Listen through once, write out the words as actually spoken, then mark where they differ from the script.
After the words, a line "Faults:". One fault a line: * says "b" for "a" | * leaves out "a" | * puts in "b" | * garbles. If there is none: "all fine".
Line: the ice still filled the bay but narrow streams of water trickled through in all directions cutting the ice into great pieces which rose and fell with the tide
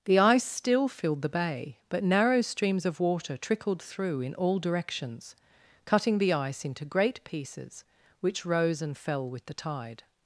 the ice still filled the bay but narrow streams of water trickled through in all directions cutting the ice into great pieces which rose and fell with the tide
Faults:
all fine